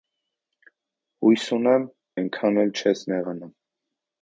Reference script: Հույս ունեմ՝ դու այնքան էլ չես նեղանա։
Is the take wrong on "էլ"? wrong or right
right